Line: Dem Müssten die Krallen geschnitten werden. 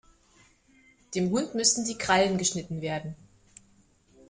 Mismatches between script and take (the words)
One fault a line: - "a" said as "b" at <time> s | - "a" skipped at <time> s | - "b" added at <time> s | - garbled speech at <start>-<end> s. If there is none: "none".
- "Hund" added at 1.3 s